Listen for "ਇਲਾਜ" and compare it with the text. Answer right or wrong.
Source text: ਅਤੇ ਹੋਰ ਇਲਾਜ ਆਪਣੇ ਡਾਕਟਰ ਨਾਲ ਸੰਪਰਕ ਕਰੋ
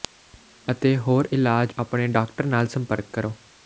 right